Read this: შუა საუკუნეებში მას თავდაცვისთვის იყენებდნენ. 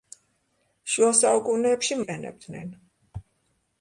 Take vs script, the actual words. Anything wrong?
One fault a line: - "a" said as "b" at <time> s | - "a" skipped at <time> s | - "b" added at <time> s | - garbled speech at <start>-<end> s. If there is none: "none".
- "მას თავდაცვისთვის" skipped at 2.0 s